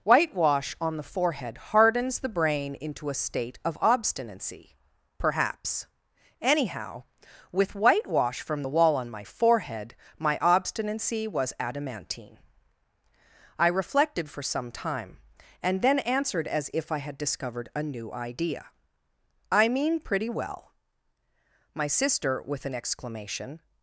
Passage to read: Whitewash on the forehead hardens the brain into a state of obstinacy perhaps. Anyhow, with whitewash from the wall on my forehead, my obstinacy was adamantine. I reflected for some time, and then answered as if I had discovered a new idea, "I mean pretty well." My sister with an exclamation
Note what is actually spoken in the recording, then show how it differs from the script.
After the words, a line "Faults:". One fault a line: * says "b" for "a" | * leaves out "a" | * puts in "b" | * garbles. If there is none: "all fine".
Whitewash on the forehead hardens the brain into a state of obstinacy perhaps. Anyhow, with whitewash from the wall on my forehead, my obstinacy was adamantine. I reflected for some time, and then answered as if I had discovered a new idea, "I mean pretty well." My sister with an exclamation
Faults:
all fine